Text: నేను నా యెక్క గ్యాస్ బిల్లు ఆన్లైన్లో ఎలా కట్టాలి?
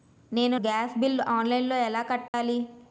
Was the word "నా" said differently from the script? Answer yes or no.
yes